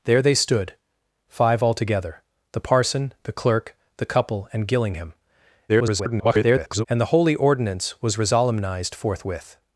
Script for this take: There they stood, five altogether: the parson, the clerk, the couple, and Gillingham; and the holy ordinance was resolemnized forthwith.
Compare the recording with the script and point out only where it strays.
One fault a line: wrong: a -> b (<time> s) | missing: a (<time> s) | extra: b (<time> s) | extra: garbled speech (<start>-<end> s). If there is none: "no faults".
extra: garbled speech (5.7-6.9 s)